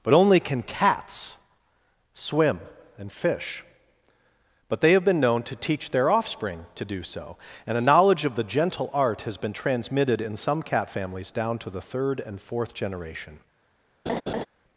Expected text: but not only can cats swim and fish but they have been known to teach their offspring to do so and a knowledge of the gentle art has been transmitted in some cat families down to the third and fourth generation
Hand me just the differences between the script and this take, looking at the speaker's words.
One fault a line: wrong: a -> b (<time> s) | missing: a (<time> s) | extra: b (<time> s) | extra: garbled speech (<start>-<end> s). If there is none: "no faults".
missing: not (0.1 s)